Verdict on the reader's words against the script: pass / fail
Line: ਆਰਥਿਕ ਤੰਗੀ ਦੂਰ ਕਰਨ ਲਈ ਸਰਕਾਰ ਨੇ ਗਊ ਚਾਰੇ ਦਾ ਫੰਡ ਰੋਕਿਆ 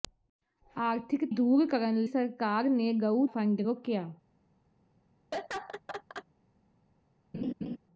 fail